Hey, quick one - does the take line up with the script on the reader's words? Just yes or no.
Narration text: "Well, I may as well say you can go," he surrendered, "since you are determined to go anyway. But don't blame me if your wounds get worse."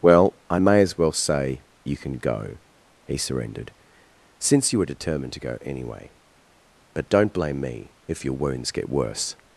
no